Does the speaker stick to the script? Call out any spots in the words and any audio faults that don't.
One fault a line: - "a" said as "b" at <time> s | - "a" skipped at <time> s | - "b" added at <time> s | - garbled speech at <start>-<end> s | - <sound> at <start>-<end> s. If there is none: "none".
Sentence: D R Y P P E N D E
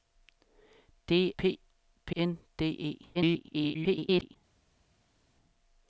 - "R Y" skipped at 1.3 s
- "E" skipped at 2.2 s
- garbled speech at 3.1-4.4 s